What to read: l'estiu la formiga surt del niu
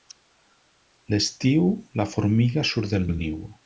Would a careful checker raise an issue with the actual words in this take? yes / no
yes